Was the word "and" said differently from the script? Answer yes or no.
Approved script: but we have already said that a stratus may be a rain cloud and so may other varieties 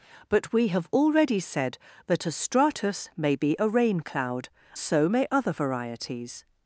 yes